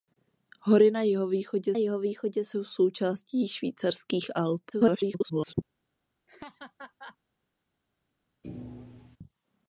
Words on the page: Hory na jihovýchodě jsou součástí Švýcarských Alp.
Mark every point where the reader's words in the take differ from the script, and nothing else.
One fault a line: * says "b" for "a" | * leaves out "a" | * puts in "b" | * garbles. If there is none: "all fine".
* puts in "jihovýchodě"
* garbles